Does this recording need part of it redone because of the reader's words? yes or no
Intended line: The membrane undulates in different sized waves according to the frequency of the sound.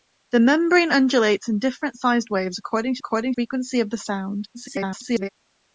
yes